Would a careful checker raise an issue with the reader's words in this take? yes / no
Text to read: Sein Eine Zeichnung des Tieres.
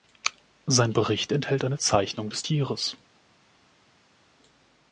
yes